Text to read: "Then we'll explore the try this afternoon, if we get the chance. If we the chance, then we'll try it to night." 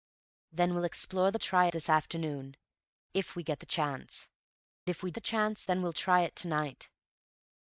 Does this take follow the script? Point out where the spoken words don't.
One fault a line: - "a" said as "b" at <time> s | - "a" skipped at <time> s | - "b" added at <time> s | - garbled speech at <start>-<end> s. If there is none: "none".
none